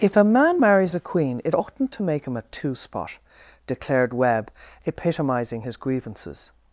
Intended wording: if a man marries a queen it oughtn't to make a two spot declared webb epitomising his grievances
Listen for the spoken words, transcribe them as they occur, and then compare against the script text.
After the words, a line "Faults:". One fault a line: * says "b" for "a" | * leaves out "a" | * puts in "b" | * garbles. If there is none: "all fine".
if a man marries a queen it oughtn't to make him a two spot declared webb epitomising his grievances
Faults:
* puts in "him"